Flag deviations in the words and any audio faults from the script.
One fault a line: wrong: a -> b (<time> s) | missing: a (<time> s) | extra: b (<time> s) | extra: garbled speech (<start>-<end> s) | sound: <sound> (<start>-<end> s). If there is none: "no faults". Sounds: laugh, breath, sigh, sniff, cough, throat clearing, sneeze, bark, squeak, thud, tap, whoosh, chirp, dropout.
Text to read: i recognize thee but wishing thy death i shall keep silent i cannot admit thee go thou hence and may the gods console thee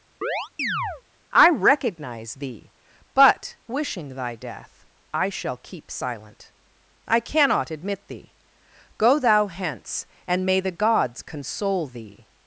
sound: chirp (0.2-1.0 s)